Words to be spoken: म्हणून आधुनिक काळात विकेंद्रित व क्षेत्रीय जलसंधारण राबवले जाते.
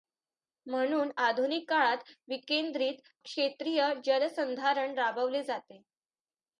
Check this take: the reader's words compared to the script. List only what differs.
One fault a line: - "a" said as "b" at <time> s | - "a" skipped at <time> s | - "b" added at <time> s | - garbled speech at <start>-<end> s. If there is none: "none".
- "व" skipped at 3.0 s